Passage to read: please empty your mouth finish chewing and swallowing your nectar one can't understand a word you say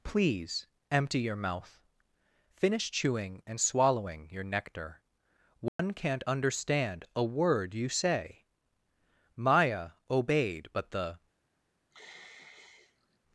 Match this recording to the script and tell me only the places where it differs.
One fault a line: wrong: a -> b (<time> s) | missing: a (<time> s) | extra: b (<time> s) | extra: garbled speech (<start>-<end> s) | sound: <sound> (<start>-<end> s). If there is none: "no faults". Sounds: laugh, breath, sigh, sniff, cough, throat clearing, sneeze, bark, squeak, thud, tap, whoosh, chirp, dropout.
sound: dropout (5.7-5.8 s)
extra: maya obeyed but the (9.4 s)
sound: sigh (11.9-13.2 s)